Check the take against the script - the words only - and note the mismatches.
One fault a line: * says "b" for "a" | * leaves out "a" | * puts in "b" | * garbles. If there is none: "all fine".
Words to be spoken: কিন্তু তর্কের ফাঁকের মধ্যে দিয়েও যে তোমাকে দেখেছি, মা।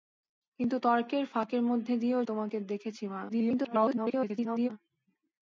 * leaves out "যে"
* garbles